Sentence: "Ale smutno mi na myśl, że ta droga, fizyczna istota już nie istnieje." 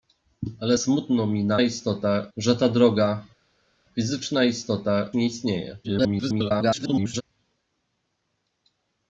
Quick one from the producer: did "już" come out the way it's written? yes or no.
no